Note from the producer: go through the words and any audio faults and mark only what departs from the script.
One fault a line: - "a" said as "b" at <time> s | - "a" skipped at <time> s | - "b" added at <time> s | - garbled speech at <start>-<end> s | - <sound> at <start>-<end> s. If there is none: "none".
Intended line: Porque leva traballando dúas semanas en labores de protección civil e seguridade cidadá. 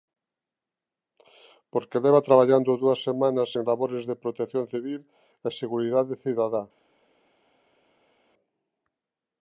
none